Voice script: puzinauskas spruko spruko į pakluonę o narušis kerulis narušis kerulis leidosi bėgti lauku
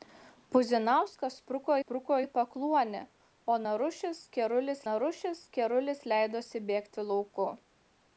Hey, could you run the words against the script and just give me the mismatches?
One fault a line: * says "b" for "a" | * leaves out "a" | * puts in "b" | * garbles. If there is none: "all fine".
all fine